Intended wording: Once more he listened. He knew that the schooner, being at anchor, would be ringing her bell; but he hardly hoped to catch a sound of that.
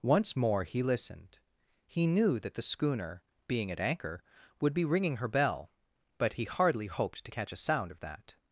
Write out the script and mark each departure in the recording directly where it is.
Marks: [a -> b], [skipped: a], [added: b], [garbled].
Once more he listened. He knew that the schooner, being at anchor, would be ringing her bell; but he hardly hoped to catch a sound of that.